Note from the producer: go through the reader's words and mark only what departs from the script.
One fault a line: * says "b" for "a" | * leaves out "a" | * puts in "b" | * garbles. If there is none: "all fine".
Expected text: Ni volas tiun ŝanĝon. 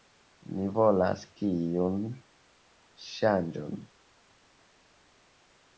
all fine